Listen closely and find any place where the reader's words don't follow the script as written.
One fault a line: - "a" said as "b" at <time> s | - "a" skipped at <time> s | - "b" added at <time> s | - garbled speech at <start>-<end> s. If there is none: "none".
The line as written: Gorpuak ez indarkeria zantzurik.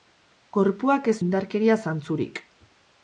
none